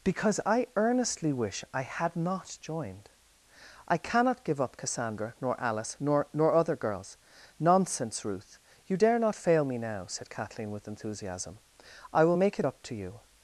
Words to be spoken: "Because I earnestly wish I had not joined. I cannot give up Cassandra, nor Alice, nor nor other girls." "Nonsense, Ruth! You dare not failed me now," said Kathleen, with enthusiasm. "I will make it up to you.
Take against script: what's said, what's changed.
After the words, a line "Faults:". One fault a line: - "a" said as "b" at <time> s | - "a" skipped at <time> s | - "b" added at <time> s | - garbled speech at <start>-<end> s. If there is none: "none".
"Because I earnestly wish I had not joined. I cannot give up Cassandra, nor Alice, nor nor other girls." "Nonsense, Ruth! You dare not fail me now," said Kathleen, with enthusiasm. "I will make it up to you.
Faults:
- "failed" said as "fail" at 9.3 s